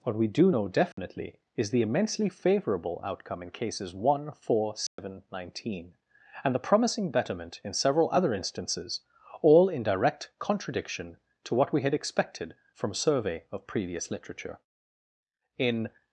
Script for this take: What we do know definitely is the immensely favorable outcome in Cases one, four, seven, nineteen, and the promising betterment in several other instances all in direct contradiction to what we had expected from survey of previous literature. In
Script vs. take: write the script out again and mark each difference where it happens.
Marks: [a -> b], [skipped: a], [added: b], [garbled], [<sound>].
What we do know definitely [dropout] is the immensely favorable outcome in Cases one, four, seven, [dropout] nineteen, and the promising betterment in several other instances all in direct contradiction to what we had expected from survey of previous literature. In